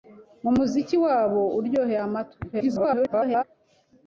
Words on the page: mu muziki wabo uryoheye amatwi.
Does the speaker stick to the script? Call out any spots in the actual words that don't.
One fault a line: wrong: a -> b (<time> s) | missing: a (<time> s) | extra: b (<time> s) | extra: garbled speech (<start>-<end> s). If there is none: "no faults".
extra: garbled speech (2.5-3.4 s)